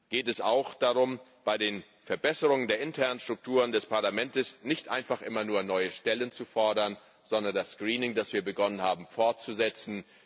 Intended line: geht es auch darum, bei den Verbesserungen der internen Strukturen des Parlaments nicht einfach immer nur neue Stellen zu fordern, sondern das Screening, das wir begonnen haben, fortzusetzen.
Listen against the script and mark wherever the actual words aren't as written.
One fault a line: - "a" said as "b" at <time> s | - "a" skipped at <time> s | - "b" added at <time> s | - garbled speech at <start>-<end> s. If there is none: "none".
none